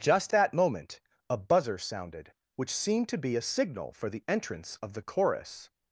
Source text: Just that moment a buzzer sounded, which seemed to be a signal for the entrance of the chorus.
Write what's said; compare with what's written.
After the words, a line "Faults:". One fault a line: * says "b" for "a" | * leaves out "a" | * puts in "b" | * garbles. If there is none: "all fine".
Just that moment a buzzer sounded, which seemed to be a signal for the entrance of the chorus.
Faults:
all fine